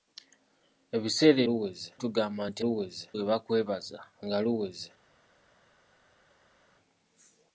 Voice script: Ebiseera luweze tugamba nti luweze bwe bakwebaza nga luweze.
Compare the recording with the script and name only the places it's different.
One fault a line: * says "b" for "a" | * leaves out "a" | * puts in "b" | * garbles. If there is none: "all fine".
all fine